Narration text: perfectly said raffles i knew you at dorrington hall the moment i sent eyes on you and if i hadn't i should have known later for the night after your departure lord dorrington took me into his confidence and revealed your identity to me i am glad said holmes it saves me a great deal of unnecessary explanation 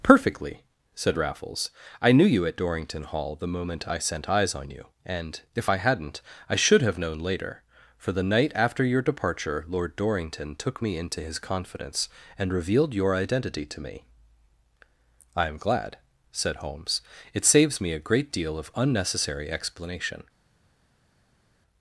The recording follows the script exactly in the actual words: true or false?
true